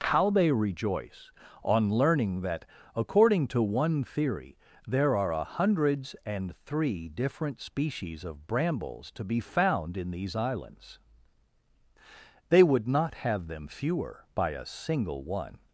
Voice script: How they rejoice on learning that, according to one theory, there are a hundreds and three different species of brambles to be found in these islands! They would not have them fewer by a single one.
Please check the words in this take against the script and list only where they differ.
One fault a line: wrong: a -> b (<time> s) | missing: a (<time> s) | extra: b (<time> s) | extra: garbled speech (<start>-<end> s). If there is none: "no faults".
no faults